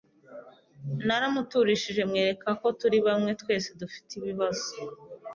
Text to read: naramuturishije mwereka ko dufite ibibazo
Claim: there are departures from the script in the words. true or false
true